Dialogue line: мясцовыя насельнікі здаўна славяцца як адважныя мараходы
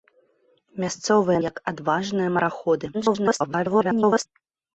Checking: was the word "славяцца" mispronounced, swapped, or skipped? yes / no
yes